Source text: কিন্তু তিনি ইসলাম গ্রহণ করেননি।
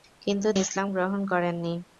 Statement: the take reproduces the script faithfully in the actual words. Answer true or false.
false